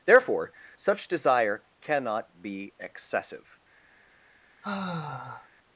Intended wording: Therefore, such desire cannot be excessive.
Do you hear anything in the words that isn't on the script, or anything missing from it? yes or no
no